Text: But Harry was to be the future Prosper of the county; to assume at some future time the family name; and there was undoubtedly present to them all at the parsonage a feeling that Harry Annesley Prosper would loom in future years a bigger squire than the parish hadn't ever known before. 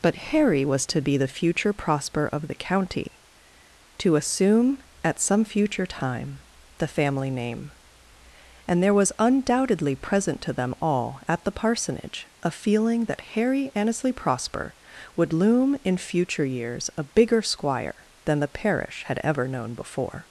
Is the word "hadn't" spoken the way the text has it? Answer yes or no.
no